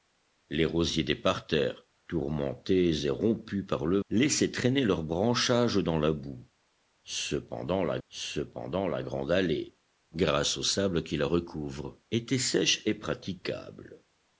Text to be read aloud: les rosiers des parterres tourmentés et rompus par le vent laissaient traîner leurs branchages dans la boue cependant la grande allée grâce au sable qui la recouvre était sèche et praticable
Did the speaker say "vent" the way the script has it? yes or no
no